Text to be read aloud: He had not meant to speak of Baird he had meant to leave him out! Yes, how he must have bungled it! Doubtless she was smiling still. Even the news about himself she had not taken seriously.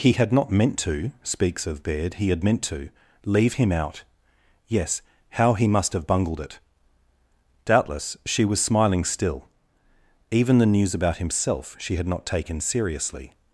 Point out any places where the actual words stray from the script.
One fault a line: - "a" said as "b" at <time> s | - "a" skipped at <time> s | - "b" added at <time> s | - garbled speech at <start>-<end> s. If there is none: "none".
- "speak" said as "speaks" at 1.2 s